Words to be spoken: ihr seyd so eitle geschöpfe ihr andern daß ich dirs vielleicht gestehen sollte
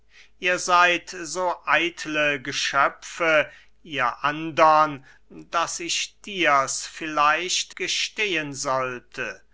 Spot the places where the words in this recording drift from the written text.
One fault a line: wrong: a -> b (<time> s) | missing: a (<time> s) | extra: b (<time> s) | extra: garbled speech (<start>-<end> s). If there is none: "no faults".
no faults